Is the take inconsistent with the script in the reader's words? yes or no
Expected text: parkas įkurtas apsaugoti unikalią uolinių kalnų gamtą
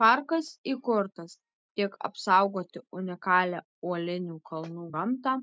yes